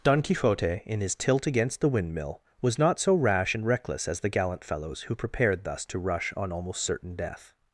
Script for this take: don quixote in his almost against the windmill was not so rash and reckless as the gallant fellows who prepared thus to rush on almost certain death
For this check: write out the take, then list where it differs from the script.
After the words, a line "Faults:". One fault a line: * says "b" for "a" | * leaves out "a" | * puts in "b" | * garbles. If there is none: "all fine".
don quixote in his tilt against the windmill was not so rash and reckless as the gallant fellows who prepared thus to rush on almost certain death
Faults:
* says "tilt" for "almost"